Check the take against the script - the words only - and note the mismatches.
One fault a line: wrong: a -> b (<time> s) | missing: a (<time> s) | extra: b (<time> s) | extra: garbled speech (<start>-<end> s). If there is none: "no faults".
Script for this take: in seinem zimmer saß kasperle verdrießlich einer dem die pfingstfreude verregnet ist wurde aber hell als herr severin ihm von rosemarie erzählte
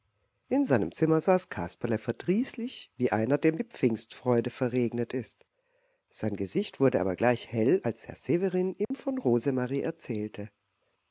extra: wie (3.0 s)
extra: sein gesicht (6.1 s)
extra: gleich (7.1 s)